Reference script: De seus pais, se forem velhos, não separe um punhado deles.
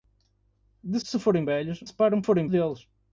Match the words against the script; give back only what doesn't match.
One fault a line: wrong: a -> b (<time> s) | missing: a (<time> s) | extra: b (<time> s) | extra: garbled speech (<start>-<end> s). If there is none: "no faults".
missing: seus pais (1.0 s)
missing: não (1.8 s)
wrong: punhado -> forem (2.2 s)